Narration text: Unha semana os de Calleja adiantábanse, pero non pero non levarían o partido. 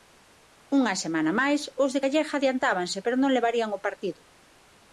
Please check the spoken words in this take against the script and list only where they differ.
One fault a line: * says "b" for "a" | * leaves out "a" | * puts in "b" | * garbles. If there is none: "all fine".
* puts in "máis"
* leaves out "pero non"